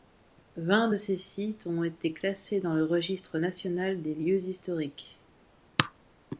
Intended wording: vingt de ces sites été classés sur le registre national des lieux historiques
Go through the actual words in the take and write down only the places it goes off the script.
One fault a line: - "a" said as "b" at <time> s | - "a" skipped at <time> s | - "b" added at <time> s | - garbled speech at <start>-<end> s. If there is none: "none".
- "ont" added at 1.7 s
- "sur" said as "dans" at 2.6 s